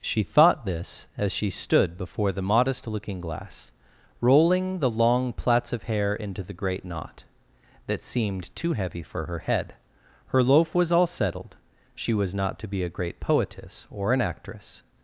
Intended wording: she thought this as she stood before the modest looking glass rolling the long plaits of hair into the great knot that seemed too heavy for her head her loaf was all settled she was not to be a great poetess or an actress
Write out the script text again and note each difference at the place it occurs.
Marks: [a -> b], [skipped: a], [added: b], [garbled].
she thought this as she stood before the modest looking glass rolling the long plaits of hair into the great knot that seemed too heavy for her head her loaf was all settled she was not to be a great poetess or an actress